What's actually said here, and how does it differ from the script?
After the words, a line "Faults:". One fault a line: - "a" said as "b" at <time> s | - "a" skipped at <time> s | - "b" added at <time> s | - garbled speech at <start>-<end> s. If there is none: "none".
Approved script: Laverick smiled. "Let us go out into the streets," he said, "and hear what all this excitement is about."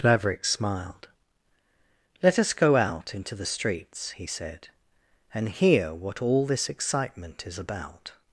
Laverick smiled. "Let us go out into the streets," he said, "and hear what all this excitement is about."
Faults:
none